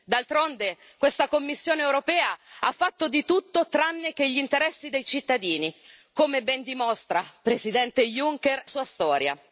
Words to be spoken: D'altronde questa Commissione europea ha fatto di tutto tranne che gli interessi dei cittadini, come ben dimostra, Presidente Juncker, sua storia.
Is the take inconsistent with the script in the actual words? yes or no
no